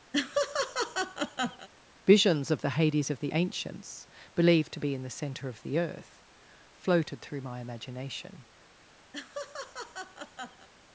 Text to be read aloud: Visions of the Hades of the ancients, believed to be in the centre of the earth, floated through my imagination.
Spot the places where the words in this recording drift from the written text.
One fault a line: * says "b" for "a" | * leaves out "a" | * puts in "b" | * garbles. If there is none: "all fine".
all fine